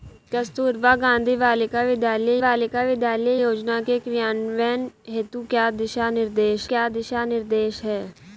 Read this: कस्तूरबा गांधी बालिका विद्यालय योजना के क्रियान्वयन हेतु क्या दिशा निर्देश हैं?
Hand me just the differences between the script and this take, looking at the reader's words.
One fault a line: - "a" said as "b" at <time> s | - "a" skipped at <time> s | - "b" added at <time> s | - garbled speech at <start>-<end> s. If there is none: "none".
- "बालिका विद्यालय" added at 2.4 s
- "क्या दिशा निर्देश" added at 6.7 s